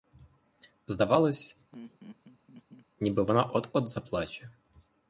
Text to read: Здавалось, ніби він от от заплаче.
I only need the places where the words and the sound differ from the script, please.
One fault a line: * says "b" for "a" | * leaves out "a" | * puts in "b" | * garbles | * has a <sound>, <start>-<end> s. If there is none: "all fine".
* has a laugh, 1.7-2.9 s
* says "вона" for "він"